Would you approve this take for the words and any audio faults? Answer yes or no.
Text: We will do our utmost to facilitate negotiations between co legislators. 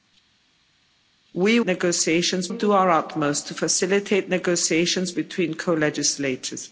no